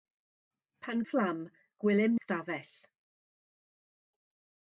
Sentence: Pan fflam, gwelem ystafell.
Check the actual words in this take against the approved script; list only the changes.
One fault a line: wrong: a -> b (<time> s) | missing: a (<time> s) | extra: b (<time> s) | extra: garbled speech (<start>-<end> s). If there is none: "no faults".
no faults